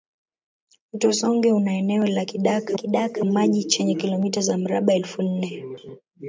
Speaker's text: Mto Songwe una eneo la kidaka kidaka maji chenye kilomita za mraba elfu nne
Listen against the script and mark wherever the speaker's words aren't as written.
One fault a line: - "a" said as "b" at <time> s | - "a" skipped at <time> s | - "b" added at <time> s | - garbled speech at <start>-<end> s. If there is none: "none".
none